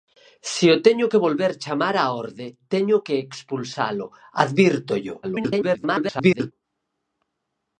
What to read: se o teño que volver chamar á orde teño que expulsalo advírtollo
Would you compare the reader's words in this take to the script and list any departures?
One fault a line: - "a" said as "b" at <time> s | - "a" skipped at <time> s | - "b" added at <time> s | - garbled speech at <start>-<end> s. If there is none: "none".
- garbled speech at 5.2-6.5 s